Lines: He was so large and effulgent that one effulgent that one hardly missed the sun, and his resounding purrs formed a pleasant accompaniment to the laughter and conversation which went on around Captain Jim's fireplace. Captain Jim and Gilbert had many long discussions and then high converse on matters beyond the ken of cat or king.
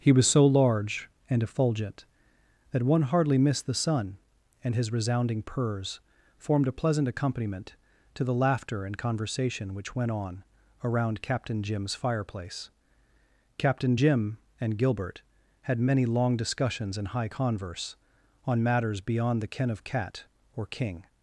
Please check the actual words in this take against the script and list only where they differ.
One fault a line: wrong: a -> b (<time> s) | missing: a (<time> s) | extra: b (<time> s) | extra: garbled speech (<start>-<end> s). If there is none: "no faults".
missing: effulgent that one (3.0 s)
missing: then (17.1 s)